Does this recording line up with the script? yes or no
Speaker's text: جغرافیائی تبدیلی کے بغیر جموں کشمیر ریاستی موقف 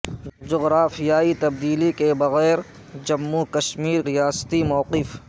yes